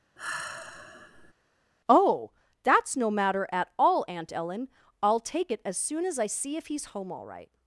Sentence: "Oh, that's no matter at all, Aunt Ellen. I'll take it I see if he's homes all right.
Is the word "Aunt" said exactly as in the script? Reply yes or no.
yes